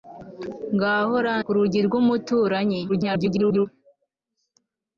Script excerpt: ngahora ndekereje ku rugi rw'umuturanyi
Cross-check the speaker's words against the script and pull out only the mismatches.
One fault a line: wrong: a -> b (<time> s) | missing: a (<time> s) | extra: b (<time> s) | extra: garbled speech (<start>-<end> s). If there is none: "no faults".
missing: ndekereje (1.3 s)
extra: garbled speech (2.9-3.7 s)